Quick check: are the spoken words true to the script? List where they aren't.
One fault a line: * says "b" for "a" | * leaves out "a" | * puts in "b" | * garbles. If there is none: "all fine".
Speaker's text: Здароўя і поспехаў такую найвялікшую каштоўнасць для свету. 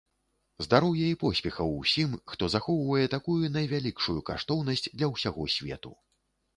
* puts in "усім хто захоўвае"
* puts in "ўсяго"